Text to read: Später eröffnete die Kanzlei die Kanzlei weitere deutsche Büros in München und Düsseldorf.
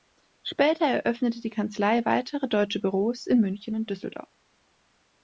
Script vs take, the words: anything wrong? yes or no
yes